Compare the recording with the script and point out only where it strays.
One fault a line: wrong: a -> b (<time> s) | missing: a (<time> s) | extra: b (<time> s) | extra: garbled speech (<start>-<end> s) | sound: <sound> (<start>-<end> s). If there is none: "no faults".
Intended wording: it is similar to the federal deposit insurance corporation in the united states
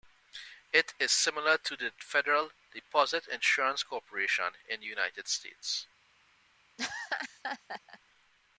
sound: laugh (6.8-8.0 s)